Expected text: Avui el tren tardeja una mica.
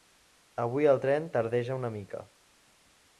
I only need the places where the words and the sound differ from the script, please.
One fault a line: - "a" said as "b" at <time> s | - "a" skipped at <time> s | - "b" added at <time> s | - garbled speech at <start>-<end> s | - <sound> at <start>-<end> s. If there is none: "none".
none